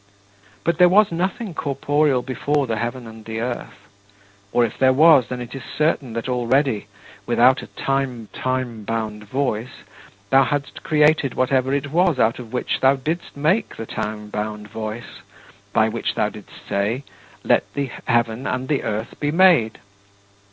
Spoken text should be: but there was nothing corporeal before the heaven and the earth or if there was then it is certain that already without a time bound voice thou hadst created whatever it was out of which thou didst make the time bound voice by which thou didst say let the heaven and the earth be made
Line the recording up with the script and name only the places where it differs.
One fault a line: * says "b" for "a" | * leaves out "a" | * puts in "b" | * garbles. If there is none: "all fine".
* puts in "time"